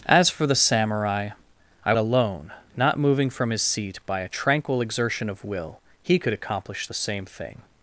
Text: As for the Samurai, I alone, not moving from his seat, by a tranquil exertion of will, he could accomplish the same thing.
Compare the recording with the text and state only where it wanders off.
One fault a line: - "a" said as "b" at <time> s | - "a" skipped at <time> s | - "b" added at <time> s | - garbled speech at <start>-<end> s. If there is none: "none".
none